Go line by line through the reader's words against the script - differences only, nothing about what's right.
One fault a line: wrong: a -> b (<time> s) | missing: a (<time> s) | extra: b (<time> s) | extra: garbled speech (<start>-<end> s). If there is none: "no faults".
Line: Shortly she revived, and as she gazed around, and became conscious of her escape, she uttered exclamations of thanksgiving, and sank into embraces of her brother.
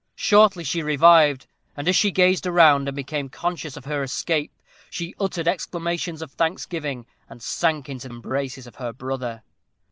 no faults